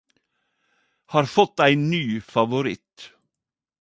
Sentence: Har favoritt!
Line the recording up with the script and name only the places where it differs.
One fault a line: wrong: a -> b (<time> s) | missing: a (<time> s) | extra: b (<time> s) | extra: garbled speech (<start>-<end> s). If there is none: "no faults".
extra: fått ein ny (1.2 s)